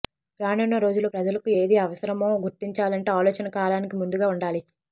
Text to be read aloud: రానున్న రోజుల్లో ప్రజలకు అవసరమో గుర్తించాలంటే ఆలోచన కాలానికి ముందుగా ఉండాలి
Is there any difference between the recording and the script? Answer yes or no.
yes